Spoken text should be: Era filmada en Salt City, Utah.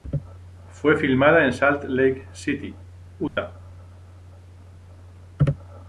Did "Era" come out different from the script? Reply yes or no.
yes